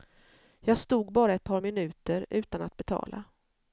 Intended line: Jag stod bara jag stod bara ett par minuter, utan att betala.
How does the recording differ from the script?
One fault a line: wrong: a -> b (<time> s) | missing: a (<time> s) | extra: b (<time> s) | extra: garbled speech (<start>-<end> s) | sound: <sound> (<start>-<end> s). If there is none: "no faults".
missing: jag stod bara (1.3 s)